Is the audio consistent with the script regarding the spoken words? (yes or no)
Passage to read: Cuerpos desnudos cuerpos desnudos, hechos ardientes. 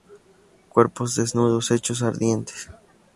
no